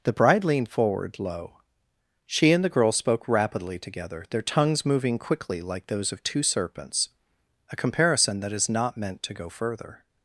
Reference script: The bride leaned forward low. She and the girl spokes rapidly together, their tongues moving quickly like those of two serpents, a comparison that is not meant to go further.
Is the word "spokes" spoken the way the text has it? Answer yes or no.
no